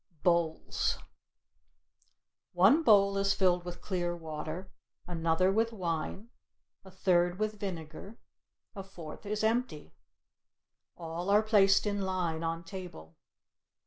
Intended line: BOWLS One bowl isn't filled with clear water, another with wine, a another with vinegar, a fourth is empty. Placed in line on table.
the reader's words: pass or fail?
fail